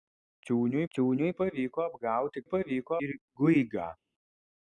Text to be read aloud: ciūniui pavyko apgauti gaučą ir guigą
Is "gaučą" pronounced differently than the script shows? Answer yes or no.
yes